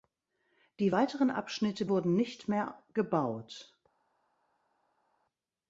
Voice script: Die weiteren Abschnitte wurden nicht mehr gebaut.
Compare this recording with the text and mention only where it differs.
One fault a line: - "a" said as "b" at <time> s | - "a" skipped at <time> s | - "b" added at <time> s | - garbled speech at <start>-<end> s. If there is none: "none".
none